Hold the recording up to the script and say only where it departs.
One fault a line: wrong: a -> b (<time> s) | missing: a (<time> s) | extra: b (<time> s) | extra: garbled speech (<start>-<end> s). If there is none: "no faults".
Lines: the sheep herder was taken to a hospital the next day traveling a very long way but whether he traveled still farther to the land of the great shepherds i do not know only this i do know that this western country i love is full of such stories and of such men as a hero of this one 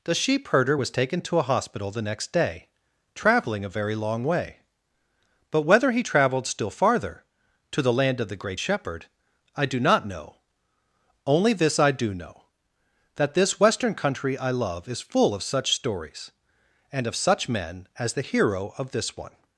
wrong: shepherds -> shepherd (8.6 s)
wrong: a -> the (18.1 s)